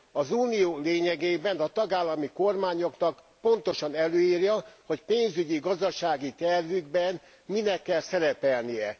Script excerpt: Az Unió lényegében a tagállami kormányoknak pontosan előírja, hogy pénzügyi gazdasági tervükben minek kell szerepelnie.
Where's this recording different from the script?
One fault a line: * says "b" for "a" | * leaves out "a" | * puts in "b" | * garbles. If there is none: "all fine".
all fine